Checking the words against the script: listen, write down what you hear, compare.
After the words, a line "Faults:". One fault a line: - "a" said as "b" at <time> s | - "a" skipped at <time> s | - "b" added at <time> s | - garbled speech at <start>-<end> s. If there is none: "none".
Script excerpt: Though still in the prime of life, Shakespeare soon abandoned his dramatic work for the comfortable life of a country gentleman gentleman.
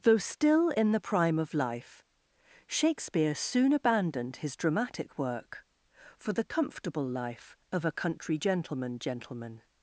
Though still in the prime of life, Shakespeare soon abandoned his dramatic work for the comfortable life of a country gentleman gentleman.
Faults:
none